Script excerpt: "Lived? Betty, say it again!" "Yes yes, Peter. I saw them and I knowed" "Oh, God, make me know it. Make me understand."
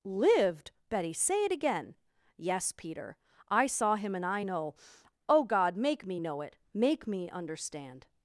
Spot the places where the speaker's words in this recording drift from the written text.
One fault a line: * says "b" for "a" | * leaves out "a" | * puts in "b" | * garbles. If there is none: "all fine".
* leaves out "yes"
* says "him" for "them"
* says "know" for "knowed"